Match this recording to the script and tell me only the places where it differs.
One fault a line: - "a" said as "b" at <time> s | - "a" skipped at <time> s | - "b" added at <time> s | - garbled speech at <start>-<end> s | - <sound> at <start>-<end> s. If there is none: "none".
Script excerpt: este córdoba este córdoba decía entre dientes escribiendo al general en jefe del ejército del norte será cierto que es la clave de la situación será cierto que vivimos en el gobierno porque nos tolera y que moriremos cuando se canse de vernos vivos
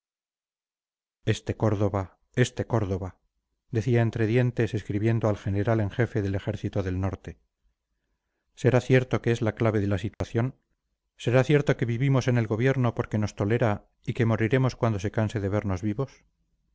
- dropout at 10.1-10.2 s